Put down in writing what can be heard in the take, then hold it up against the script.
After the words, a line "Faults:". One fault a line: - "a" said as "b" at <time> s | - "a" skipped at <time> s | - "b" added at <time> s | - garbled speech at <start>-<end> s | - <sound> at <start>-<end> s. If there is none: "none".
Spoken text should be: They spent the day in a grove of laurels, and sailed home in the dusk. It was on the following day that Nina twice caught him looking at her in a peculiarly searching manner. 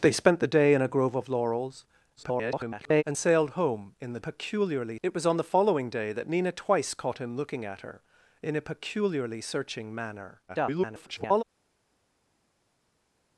They spent the day in a grove of laurels, [garbled] and sailed home in the peculiarly. It was on the following day that Nina twice caught him looking at her in a peculiarly searching manner. [garbled]
Faults:
- garbled speech at 2.2-3.0 s
- "dusk" said as "peculiarly" at 4.2 s
- garbled speech at 10.5-11.4 s